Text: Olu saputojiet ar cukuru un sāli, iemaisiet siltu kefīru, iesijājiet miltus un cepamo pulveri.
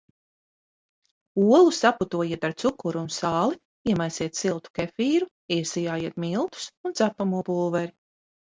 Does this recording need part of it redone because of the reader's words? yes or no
no